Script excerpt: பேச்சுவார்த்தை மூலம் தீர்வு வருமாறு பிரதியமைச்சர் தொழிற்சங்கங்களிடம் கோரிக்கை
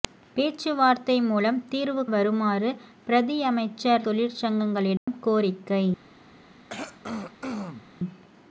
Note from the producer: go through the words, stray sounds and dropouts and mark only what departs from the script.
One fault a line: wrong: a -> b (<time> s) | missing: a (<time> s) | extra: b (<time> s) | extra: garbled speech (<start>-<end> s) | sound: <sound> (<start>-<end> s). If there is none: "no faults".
sound: dropout (5.0-5.1 s)
sound: throat clearing (6.7-7.9 s)